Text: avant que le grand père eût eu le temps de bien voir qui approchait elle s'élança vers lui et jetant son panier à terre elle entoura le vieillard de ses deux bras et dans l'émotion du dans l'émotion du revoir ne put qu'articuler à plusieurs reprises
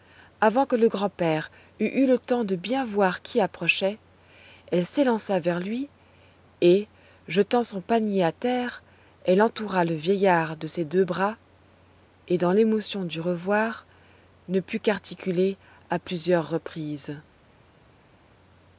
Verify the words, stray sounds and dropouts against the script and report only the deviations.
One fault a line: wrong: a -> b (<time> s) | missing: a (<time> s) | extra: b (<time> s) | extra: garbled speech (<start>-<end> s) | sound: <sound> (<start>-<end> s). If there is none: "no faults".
missing: dans l'émotion du (13.2 s)